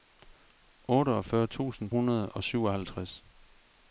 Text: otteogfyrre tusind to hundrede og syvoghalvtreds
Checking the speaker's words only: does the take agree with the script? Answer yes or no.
no